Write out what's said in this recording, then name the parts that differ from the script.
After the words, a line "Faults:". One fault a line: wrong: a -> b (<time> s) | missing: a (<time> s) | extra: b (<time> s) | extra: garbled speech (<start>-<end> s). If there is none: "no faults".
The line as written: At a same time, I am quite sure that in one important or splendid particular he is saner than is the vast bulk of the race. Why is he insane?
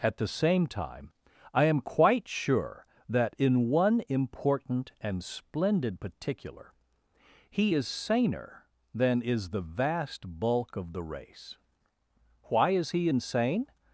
At the same time, I am quite sure that in one important and splendid particular he is saner than is the vast bulk of the race. Why is he insane?
Faults:
wrong: a -> the (0.2 s)
wrong: or -> and (5.0 s)